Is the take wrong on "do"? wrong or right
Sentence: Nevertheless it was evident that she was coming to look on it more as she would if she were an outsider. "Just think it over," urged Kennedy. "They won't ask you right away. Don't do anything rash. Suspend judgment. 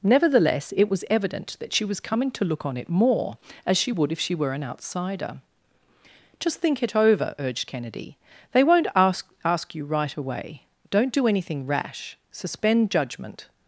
right